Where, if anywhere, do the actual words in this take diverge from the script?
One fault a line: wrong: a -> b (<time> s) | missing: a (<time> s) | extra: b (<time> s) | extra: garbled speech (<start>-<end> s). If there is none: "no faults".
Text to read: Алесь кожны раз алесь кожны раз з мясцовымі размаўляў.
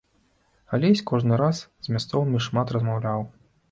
missing: алесь кожны раз (1.6 s)
extra: шмат (2.5 s)